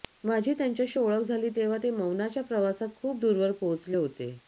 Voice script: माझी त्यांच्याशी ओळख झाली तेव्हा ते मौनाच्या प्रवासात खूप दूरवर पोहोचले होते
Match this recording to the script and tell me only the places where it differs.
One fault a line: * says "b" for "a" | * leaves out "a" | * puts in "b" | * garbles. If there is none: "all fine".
all fine